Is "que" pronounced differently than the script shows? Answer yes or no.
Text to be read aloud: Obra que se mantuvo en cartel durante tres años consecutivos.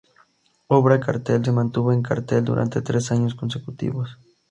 yes